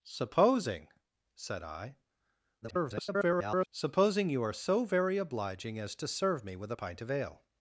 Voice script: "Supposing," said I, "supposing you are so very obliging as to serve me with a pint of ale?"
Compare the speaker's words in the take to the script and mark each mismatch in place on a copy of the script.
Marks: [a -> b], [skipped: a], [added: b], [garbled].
"Supposing," said I, [garbled] "supposing you are so very obliging as to serve me with a pint of ale?"